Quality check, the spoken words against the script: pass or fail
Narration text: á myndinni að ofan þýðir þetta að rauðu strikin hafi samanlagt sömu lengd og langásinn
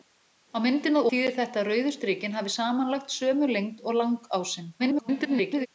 fail